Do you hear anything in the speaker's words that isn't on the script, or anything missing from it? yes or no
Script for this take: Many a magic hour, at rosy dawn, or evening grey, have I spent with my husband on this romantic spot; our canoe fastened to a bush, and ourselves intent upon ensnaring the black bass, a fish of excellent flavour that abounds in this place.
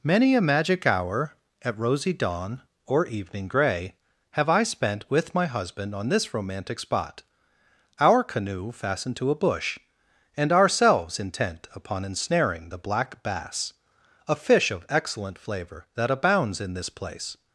no